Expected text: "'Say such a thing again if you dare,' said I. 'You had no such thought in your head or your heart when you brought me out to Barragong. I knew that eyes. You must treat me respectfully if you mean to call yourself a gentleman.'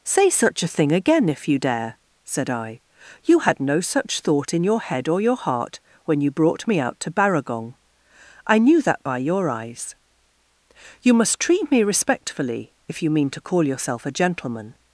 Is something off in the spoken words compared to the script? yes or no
yes